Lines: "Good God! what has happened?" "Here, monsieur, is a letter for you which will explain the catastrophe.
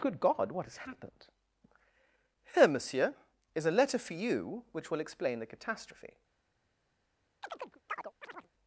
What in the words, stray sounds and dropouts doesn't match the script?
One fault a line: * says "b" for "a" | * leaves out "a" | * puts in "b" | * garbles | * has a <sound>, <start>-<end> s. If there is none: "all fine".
* has a chirp, 7.4-8.5 s